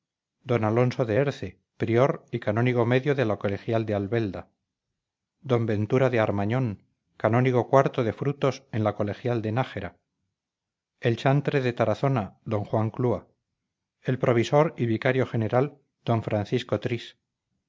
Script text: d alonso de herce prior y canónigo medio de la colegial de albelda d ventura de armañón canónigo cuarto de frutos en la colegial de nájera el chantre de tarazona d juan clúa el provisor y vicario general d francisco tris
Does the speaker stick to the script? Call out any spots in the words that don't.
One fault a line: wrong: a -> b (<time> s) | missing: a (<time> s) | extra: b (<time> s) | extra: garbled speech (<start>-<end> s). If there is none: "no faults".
no faults